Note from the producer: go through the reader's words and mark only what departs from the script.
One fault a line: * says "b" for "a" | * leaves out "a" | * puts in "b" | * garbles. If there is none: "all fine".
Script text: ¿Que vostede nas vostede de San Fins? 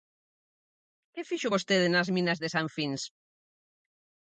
* puts in "fixo"
* says "minas" for "vostede"